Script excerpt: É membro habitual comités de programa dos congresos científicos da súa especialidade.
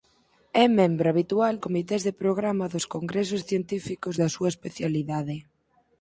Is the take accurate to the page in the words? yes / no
yes